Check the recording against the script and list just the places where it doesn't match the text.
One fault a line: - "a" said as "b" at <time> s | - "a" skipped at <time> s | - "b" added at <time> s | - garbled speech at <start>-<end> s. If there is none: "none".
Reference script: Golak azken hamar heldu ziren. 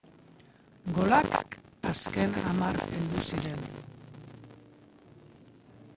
none